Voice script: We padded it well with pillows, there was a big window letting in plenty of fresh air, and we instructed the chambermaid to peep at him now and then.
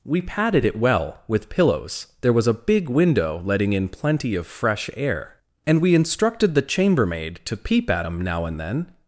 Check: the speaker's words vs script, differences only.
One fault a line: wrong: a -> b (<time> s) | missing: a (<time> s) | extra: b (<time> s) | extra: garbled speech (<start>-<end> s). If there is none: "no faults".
no faults